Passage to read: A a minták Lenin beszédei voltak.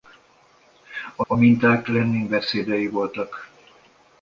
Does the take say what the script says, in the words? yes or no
yes